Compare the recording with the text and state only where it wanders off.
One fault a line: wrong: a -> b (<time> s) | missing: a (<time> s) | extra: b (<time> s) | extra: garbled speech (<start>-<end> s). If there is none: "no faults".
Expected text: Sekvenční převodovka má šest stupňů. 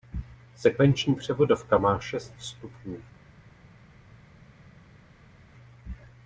no faults